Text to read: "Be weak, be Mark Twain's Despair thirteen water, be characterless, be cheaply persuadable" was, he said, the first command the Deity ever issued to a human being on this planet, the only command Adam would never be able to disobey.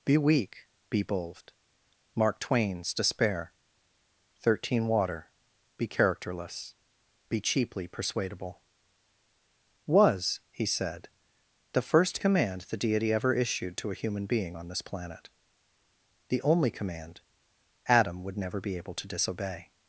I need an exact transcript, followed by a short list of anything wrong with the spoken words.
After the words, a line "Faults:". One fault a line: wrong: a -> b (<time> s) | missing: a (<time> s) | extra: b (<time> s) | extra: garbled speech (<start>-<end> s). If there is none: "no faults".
"Be weak, be bold Mark Twain's Despair thirteen water, be characterless, be cheaply persuadable" was, he said, the first command the Deity ever issued to a human being on this planet, the only command Adam would never be able to disobey.
Faults:
extra: bold (1.0 s)